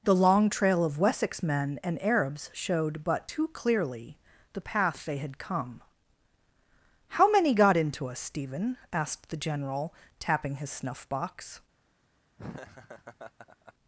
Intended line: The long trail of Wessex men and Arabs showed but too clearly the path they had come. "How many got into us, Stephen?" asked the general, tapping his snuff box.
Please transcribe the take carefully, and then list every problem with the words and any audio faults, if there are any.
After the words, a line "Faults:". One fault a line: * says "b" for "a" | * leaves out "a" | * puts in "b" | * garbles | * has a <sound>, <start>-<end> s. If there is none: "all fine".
The long trail of Wessex men and Arabs showed but too clearly the path they had come. "How many got into us, Stephen?" asked the general, tapping his snuff box.
Faults:
* has a laugh, 12.4-13.7 s